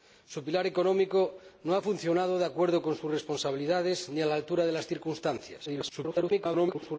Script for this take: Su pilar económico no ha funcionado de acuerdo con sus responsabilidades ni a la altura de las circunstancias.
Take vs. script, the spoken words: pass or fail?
fail